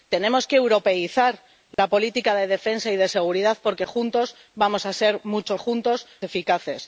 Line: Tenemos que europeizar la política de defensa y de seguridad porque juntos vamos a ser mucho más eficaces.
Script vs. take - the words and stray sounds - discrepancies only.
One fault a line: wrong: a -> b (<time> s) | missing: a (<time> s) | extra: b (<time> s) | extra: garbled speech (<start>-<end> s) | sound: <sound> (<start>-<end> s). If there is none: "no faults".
sound: dropout (1.7-1.8 s)
wrong: más -> juntos (5.6 s)